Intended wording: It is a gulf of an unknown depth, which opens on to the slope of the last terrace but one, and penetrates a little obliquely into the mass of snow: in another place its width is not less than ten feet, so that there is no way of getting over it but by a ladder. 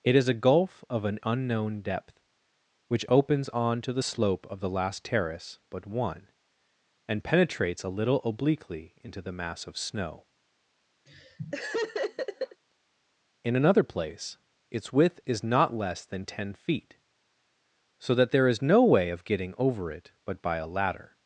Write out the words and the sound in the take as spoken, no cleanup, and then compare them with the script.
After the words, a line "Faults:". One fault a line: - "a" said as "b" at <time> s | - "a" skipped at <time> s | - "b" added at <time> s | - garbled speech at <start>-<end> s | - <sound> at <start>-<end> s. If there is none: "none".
It is a gulf of an unknown depth, which opens on to the slope of the last terrace but one, and penetrates a little obliquely into the mass of snow: in another place its width is not less than ten feet, so that there is no way of getting over it but by a ladder.
Faults:
- laugh at 11.1-12.6 s